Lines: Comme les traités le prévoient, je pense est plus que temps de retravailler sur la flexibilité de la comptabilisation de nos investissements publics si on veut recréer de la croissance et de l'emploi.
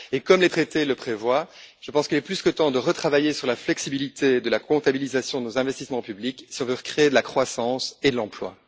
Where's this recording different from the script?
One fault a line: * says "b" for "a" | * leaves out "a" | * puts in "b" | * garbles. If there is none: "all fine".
* puts in "qu'il"